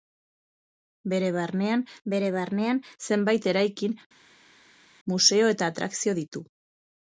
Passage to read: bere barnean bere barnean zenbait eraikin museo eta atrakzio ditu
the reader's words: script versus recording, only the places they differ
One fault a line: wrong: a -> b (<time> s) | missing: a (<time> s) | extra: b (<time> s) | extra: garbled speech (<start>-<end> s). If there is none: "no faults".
no faults